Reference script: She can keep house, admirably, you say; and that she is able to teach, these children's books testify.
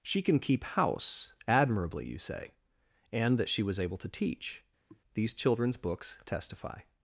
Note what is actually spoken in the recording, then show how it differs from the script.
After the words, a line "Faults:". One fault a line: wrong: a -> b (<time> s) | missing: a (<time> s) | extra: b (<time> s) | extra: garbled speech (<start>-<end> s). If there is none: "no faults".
She can keep house, admirably, you say; and that she was able to teach, these children's books testify.
Faults:
wrong: is -> was (3.6 s)